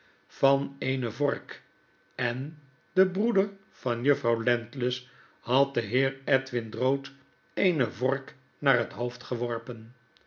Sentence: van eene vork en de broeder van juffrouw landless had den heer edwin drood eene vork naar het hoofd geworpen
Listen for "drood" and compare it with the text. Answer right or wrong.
right